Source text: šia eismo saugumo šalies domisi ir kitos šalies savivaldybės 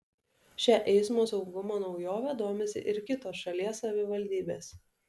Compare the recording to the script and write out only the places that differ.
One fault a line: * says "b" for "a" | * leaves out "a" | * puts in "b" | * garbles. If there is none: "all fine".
* says "naujove" for "šalies"